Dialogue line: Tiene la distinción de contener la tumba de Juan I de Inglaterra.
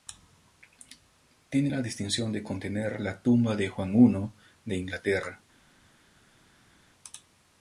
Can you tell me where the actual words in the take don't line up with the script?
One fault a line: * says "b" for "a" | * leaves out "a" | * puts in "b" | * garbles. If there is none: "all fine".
all fine